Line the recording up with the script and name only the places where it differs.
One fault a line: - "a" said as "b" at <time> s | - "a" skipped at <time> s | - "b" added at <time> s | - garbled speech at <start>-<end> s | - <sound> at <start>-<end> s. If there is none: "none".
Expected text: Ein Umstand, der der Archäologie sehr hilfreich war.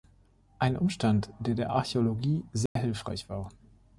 - dropout at 2.7-2.8 s